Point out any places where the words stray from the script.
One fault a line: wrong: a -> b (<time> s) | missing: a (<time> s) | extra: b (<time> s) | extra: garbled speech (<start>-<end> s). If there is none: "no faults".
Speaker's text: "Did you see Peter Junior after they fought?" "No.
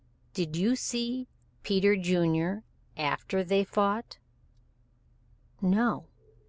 no faults